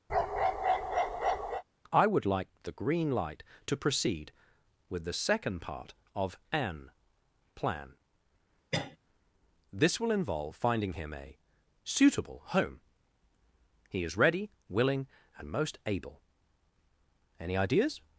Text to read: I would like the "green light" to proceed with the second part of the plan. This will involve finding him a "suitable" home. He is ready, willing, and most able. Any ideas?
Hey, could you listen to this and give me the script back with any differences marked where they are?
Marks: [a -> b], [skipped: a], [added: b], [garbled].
I would like the "green light" to proceed with the second part of [the -> an] plan. This will involve finding him a "suitable" home. He is ready, willing, and most able. Any ideas?